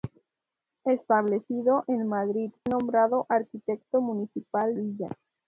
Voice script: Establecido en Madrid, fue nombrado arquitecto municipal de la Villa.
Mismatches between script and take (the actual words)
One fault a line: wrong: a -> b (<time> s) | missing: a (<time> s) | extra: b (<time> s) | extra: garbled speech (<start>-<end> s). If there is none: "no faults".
missing: fue (2.5 s)
missing: de la (4.8 s)